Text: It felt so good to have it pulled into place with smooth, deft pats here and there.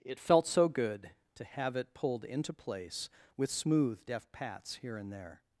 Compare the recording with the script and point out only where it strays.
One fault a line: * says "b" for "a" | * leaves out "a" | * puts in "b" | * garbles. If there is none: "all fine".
all fine